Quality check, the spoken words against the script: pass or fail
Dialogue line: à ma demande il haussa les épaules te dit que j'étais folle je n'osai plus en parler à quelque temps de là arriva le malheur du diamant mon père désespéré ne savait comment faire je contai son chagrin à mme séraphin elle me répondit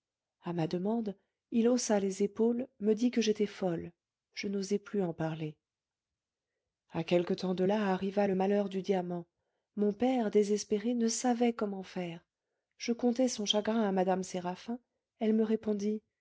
fail